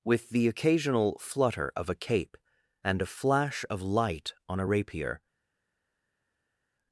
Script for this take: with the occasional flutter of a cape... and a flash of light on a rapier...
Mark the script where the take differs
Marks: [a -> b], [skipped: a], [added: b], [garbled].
with the occasional flutter of a cape... and a flash of light on a rapier...